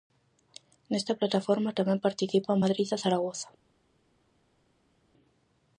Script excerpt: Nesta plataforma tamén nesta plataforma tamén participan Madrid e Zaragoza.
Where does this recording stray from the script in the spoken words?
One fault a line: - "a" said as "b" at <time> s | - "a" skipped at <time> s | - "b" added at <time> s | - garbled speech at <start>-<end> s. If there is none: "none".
- "nesta plataforma tamén" skipped at 2.0 s